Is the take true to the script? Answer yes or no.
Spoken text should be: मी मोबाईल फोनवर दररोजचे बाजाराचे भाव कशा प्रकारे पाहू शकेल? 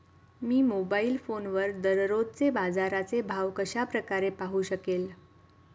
yes